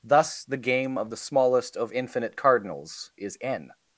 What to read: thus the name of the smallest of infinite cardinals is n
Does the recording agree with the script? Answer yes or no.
no